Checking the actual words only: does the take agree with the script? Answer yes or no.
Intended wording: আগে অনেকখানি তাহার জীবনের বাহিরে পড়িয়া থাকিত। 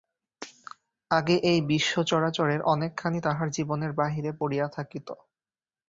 no